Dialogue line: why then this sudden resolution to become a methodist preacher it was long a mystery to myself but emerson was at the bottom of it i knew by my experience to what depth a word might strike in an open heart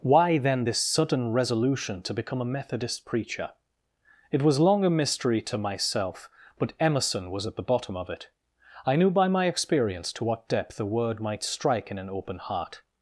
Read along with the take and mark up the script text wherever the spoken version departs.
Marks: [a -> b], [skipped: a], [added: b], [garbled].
why then this sudden resolution to become a methodist preacher it was long a mystery to myself but emerson was at the bottom of it i knew by my experience to what depth a word might strike in an open heart